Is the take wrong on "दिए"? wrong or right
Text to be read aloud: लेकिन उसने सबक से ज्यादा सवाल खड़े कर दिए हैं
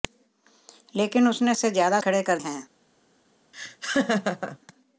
wrong